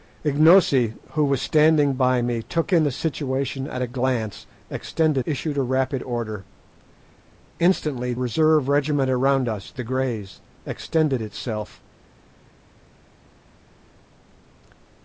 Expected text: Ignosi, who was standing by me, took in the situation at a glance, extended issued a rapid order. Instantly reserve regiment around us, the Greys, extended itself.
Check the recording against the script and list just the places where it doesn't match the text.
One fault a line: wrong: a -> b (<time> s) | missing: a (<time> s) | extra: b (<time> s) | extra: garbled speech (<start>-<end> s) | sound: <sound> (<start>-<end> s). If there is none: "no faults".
no faults